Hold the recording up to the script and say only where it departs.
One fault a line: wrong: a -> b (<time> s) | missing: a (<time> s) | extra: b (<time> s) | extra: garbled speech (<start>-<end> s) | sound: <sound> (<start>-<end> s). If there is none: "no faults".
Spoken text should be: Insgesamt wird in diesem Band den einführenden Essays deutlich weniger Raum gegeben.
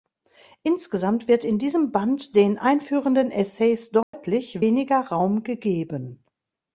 sound: dropout (4.0-4.1 s)